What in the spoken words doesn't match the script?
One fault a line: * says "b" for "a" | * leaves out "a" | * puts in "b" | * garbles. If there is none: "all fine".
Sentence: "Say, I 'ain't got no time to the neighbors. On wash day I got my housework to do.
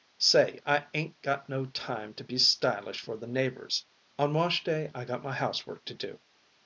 * puts in "be stylish for"